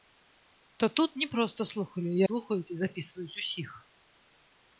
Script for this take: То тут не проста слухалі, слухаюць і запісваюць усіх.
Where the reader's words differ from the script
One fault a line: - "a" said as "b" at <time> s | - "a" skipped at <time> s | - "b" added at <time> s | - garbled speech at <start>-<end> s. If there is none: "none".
none